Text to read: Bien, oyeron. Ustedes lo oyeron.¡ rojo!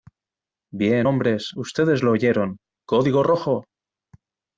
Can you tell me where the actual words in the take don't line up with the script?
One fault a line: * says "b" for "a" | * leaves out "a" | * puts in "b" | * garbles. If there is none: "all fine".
* says "hombres" for "oyeron"
* puts in "código"